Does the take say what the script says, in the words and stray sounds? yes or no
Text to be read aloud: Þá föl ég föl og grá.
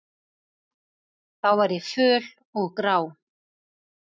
no